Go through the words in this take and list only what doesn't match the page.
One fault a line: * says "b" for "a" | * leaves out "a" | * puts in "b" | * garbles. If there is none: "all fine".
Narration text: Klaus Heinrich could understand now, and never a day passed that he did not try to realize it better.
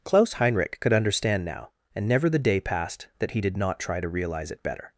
* says "the" for "a"